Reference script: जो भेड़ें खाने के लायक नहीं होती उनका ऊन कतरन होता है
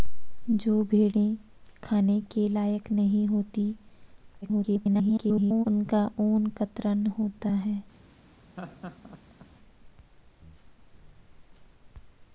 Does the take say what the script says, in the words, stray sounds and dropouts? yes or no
no